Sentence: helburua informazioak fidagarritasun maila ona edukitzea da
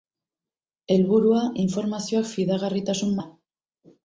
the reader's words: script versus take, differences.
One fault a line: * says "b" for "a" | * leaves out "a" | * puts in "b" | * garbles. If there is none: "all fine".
* leaves out "maila ona edukitzea"